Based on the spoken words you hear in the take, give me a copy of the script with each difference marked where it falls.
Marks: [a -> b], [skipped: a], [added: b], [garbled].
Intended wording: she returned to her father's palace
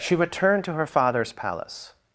she returned to her father's palace